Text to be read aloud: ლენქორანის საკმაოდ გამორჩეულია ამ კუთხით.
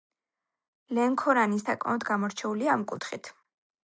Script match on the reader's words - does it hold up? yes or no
yes